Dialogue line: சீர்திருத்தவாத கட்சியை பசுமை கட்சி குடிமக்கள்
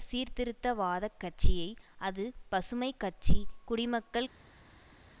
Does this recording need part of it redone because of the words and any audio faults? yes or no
yes